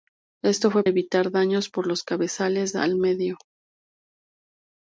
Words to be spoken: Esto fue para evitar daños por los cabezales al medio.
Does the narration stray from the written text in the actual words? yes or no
yes